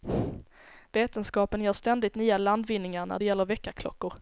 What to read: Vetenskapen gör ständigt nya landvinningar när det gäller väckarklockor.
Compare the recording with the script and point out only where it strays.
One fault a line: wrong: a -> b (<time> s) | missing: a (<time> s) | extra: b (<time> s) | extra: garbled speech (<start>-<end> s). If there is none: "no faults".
no faults